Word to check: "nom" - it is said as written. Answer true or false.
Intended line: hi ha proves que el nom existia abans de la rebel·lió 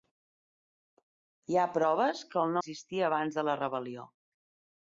false